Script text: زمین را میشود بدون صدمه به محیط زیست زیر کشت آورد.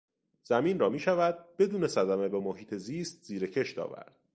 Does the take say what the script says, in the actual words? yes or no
yes